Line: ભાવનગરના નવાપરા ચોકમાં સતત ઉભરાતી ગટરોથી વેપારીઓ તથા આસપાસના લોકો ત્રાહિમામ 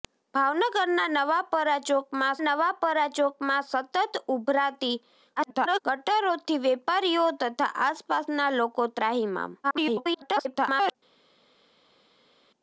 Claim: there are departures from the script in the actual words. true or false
true